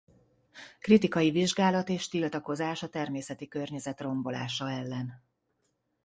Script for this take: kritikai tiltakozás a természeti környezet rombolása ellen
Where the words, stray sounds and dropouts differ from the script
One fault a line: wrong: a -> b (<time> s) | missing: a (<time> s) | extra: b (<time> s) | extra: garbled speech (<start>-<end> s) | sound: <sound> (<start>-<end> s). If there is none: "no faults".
extra: vizsgálat és (1.3 s)